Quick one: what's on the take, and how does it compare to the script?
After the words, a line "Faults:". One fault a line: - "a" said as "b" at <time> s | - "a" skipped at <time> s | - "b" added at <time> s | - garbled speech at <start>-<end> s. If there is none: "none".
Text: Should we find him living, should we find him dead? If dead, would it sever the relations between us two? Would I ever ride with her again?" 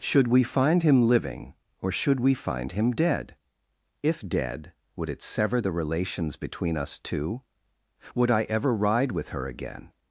Should we find him living, or should we find him dead? If dead, would it sever the relations between us two? Would I ever ride with her again?"
Faults:
- "or" added at 1.8 s